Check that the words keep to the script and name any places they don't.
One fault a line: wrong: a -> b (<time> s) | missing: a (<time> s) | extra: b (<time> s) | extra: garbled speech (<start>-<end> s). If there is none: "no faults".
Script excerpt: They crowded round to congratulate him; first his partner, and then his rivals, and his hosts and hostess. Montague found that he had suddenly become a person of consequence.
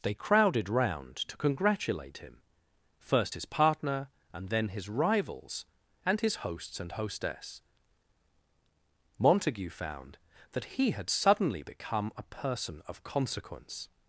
no faults